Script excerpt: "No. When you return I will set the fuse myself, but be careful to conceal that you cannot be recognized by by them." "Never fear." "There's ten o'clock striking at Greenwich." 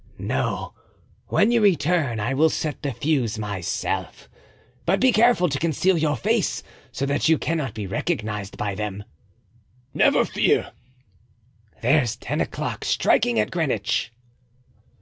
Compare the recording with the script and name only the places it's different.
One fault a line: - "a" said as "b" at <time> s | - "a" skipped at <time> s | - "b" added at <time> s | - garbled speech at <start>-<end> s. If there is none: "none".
- "your face so" added at 6.0 s
- "by" skipped at 8.8 s